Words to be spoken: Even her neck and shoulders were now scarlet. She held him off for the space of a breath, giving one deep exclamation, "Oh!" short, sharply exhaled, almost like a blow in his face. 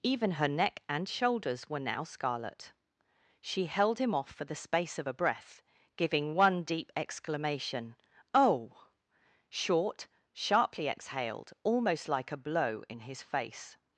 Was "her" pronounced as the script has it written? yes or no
yes